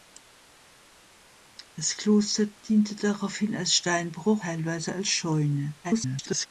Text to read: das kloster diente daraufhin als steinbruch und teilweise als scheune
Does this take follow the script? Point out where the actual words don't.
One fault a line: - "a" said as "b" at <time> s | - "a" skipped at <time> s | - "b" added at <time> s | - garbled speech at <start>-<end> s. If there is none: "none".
- "und" skipped at 4.4 s
- garbled speech at 5.8-6.5 s